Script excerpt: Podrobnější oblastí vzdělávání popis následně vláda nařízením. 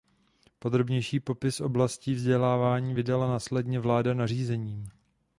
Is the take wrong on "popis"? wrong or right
wrong